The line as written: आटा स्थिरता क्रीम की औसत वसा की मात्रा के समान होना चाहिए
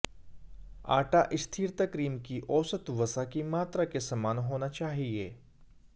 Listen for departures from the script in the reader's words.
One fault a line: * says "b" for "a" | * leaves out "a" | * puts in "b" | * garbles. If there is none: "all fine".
all fine